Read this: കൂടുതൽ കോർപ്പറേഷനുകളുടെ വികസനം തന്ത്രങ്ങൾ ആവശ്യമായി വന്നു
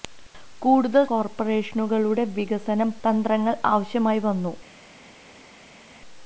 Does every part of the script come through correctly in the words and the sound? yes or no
yes